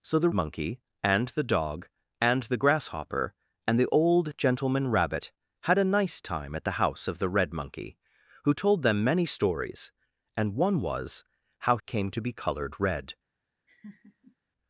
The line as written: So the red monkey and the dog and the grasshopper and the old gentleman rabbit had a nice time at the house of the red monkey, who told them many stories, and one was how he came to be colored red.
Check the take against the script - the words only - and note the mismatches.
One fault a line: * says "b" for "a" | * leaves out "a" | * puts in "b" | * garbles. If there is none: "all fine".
* leaves out "red"
* leaves out "he"